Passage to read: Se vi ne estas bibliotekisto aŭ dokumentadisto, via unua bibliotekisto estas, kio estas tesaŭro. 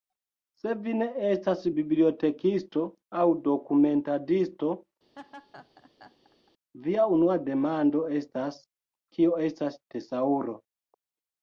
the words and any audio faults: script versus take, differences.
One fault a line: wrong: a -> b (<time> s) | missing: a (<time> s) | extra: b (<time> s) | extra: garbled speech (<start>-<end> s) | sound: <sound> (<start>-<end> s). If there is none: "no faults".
sound: laugh (5.2-6.5 s)
wrong: bibliotekisto -> demando (7.5 s)